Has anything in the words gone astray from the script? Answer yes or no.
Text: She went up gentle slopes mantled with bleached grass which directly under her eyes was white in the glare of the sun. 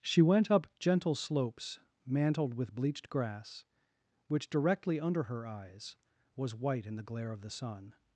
no